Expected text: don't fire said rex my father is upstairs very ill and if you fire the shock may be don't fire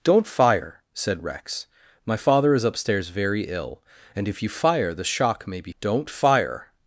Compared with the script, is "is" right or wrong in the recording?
right